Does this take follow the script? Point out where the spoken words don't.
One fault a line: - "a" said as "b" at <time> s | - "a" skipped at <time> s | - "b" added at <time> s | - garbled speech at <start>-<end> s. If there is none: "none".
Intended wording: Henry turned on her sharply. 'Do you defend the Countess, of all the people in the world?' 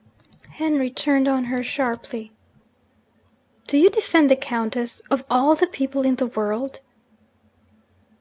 none